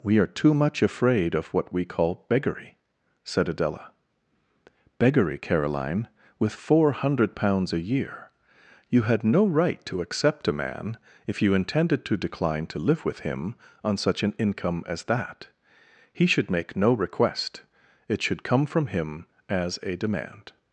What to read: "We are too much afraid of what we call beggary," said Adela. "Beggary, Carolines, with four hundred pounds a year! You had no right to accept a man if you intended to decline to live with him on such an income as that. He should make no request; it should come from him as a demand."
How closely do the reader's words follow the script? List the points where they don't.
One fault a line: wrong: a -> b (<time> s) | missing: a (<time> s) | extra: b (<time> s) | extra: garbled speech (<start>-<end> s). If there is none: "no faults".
wrong: Carolines -> Caroline (5.3 s)